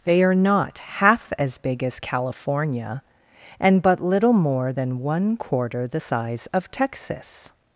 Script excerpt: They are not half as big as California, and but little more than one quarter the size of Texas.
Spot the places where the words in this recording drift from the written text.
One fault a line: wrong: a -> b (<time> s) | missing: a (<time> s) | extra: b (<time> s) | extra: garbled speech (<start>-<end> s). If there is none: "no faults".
no faults